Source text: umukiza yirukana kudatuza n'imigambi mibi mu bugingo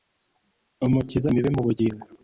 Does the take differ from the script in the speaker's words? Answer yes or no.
yes